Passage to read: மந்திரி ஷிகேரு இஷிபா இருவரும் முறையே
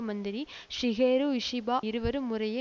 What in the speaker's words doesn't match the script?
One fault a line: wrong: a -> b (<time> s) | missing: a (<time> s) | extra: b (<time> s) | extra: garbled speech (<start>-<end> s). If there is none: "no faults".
no faults